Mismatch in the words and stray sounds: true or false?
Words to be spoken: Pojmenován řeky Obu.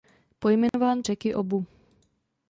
true